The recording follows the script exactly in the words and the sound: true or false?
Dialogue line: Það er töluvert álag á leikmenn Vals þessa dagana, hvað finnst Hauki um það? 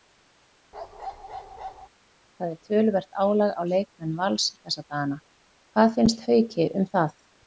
false